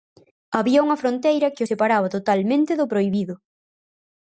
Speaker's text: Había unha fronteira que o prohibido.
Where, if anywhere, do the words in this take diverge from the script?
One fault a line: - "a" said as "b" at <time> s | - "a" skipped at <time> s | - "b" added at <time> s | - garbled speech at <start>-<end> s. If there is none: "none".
- "separaba totalmente do" added at 1.7 s